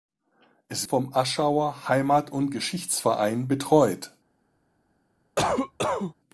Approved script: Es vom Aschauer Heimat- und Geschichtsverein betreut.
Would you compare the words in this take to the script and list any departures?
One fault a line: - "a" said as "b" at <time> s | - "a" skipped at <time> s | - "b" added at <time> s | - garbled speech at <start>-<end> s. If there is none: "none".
none